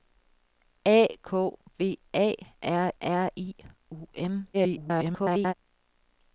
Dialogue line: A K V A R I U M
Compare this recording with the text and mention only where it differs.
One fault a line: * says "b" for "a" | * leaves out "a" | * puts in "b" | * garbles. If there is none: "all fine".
* puts in "R"
* garbles